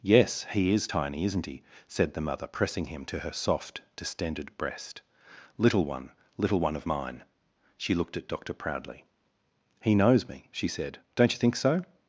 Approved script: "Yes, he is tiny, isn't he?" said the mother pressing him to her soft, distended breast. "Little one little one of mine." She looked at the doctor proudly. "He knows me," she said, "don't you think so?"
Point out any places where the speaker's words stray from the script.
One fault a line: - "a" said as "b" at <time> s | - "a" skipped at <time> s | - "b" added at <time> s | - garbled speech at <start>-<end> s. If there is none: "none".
- "the" skipped at 8.3 s